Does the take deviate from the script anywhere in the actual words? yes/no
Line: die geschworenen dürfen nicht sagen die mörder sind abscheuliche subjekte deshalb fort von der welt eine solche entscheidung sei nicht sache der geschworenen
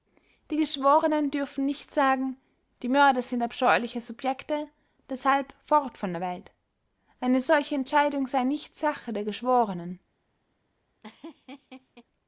no